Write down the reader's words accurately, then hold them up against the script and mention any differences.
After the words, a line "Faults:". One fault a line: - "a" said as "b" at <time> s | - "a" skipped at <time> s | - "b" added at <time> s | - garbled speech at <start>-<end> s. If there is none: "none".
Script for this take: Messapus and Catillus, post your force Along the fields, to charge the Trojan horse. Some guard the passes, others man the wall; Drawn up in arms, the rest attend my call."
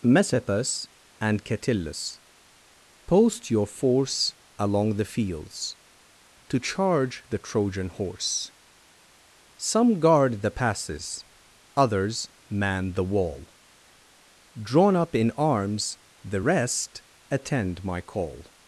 Messapus and Catillus, post your force Along the fields, to charge the Trojan horse. Some guard the passes, others man the wall; Drawn up in arms, the rest attend my call."
Faults:
none